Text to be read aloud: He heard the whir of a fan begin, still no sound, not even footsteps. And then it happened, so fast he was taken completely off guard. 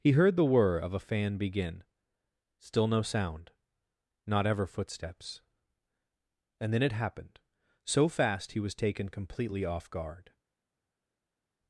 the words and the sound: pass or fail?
fail